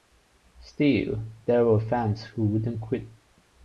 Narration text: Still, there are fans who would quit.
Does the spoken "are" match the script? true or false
false